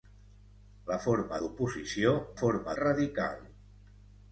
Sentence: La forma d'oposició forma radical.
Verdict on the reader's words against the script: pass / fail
pass